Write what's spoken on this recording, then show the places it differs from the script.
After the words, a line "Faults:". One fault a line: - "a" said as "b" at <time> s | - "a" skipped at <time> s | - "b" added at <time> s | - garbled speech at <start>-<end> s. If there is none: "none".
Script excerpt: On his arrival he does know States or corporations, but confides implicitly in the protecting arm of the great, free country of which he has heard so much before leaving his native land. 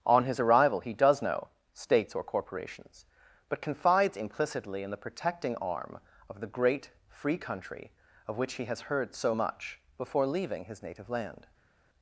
On his arrival he does know States or corporations, but confides implicitly in the protecting arm of the great, free country of which he has heard so much before leaving his native land.
Faults:
none